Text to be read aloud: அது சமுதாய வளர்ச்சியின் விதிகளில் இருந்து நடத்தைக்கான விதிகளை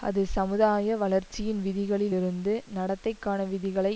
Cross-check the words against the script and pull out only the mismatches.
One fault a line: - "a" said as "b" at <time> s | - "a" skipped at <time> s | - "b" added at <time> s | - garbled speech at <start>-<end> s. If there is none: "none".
none